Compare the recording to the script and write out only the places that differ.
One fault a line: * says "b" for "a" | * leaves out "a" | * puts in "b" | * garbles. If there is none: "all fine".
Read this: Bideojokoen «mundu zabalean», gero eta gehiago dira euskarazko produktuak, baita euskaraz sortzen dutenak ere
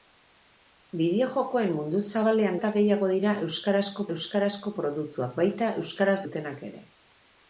* leaves out "gero"
* puts in "euskarazko"
* leaves out "sortzen"